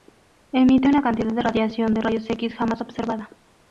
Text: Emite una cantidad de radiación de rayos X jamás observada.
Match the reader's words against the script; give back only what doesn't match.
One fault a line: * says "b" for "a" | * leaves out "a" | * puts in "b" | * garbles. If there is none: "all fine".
all fine